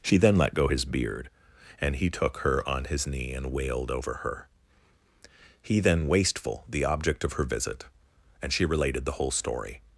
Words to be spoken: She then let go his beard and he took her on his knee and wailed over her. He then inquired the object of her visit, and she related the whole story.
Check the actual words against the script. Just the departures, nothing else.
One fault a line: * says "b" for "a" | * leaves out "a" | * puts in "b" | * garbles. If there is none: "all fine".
* says "wasteful" for "inquired"